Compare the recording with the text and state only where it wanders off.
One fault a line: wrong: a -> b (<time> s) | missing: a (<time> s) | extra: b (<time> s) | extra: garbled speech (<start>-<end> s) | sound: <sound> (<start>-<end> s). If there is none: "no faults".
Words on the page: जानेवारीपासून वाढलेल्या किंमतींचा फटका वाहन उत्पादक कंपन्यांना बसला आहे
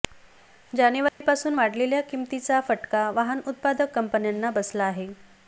sound: dropout (1.1-1.2 s)